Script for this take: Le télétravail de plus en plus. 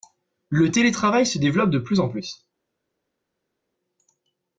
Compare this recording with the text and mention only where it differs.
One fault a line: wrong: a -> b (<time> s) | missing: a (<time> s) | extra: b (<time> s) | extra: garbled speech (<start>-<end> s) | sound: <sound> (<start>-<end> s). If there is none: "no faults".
extra: se développe (1.3 s)